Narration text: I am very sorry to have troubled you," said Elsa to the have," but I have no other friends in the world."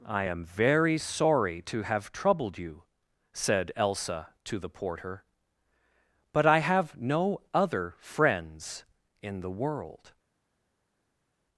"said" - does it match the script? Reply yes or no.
yes